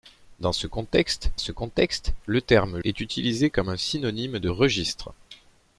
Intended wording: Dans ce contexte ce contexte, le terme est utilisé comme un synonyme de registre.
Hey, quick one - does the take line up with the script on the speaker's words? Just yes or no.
yes